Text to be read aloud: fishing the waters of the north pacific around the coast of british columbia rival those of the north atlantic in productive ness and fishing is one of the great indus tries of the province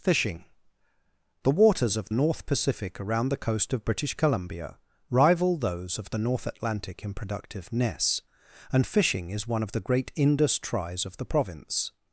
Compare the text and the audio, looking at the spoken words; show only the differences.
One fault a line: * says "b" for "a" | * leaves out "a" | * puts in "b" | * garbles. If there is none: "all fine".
* leaves out "the"